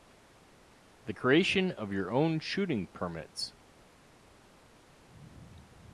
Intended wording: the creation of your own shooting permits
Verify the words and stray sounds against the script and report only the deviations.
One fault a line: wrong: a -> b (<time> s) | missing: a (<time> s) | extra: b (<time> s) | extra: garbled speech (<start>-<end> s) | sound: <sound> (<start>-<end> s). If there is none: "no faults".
no faults